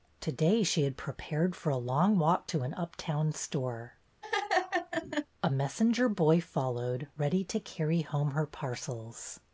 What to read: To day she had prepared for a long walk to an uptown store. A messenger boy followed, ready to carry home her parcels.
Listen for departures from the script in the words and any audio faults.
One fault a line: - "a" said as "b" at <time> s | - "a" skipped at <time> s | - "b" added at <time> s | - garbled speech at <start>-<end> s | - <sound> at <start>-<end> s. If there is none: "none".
- laugh at 4.2-5.3 s